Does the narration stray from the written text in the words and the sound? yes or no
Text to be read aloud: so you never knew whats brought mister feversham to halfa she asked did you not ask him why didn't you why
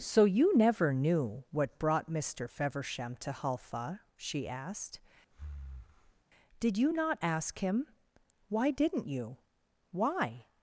yes